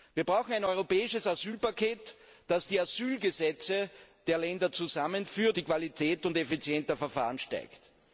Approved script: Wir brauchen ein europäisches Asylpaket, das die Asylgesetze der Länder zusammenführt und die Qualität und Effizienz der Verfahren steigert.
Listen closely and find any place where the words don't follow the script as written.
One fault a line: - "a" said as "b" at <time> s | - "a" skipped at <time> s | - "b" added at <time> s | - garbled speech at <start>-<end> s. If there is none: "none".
- "und" skipped at 5.6 s